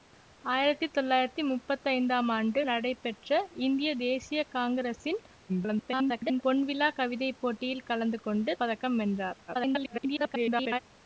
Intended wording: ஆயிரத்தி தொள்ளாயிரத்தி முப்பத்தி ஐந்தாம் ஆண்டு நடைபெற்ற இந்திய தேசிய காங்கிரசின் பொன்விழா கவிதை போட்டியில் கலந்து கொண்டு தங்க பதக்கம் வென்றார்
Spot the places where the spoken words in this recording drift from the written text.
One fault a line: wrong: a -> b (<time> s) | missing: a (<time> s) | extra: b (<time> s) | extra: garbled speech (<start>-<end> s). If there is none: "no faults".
extra: garbled speech (5.5-6.4 s)
missing: தங்க (8.5 s)
extra: garbled speech (9.5-10.8 s)